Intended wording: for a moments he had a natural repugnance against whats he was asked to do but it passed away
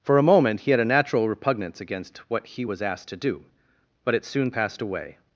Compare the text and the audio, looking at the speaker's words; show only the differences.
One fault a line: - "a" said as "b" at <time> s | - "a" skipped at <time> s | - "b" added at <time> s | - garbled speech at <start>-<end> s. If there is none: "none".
- "moments" said as "moment" at 0.2 s
- "whats" said as "what" at 2.3 s
- "soon" added at 4.2 s